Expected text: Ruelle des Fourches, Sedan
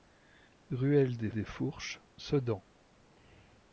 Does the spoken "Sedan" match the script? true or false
true